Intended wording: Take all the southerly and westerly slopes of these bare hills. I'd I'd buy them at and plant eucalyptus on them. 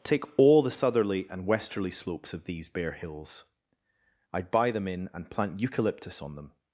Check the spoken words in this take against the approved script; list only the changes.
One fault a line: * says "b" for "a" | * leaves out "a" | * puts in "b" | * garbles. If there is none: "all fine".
* leaves out "I'd"
* says "in" for "at"